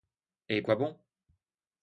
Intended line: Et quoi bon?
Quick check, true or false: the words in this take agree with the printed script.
true